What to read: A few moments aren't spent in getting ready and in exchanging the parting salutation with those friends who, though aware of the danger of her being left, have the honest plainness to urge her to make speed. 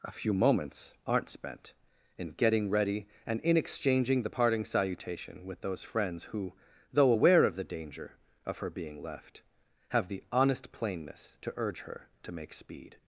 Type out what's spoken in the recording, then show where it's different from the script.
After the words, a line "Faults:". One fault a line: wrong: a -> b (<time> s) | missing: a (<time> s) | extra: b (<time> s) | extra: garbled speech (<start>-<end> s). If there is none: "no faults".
A few moments aren't spent in getting ready and in exchanging the parting salutation with those friends who, though aware of the danger of her being left, have the honest plainness to urge her to make speed.
Faults:
no faults